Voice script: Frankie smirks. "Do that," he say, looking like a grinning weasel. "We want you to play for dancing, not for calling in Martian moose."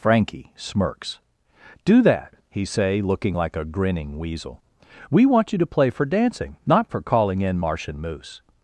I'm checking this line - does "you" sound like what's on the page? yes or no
yes